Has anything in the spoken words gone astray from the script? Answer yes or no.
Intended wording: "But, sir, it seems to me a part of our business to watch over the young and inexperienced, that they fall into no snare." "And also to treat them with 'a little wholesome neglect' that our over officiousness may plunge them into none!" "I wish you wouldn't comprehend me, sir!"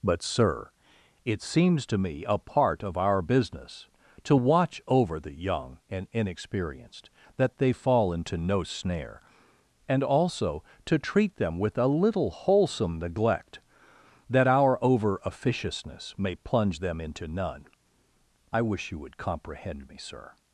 yes